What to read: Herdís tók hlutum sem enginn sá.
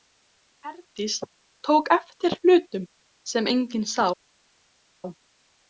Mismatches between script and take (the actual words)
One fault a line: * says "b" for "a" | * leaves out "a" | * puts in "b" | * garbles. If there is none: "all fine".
* puts in "eftir"